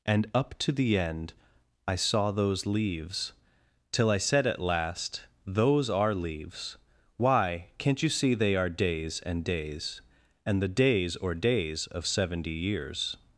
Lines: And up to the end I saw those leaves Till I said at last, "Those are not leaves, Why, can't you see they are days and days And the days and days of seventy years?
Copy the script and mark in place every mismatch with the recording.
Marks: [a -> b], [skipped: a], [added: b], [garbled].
And up to the end I saw those leaves Till I said at last, "Those are [skipped: not] leaves, Why, can't you see they are days and days And the days [and -> or] days of seventy years?